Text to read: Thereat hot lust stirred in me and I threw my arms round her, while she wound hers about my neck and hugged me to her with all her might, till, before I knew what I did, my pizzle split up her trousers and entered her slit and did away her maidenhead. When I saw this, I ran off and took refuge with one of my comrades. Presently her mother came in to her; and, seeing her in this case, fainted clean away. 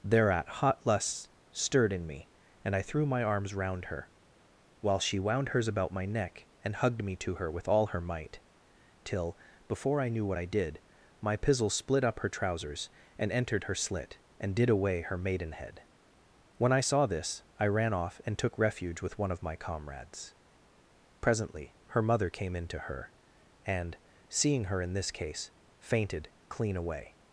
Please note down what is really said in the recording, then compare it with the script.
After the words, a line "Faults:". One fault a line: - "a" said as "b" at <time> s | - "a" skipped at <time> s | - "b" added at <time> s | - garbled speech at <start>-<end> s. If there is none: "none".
Thereat hot lust stirred in me and I threw my arms round her, while she wound hers about my neck and hugged me to her with all her might, till, before I knew what I did, my pizzle split up her trousers and entered her slit and did away her maidenhead. When I saw this, I ran off and took refuge with one of my comrades. Presently her mother came in to her; and, seeing her in this case, fainted clean away.
Faults:
none